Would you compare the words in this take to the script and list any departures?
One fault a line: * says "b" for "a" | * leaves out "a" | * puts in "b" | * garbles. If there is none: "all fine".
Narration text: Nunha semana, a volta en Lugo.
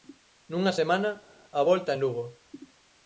all fine